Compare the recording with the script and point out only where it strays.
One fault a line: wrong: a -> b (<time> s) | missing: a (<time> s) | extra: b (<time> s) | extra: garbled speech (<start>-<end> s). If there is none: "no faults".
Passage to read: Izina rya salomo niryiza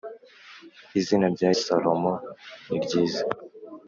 no faults